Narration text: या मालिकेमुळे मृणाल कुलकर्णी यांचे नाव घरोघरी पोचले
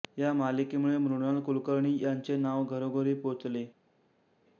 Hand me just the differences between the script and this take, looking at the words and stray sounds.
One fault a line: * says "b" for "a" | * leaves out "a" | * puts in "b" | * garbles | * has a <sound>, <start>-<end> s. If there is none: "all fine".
all fine